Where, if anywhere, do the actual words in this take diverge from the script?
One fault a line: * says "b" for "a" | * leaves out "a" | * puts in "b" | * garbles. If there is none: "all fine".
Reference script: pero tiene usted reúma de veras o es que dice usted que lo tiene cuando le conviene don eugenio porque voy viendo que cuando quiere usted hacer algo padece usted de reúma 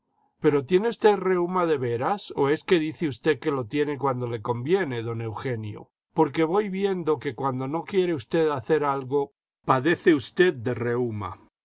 * puts in "no"